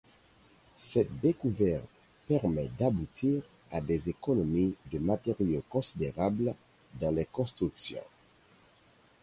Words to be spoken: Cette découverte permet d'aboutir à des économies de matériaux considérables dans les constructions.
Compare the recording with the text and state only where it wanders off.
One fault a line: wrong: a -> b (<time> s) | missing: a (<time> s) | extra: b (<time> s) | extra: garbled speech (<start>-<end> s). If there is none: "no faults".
no faults